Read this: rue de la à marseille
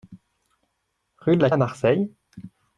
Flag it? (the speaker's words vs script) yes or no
no